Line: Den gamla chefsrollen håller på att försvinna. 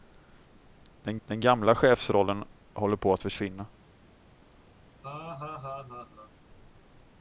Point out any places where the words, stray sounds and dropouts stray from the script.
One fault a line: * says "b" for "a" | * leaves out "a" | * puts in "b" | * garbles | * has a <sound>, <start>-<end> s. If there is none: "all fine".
* puts in "den"
* has a laugh, 5.0-6.3 s